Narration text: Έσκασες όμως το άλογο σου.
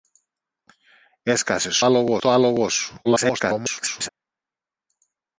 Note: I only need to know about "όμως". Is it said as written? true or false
false